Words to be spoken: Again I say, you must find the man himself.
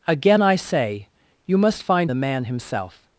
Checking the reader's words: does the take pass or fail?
pass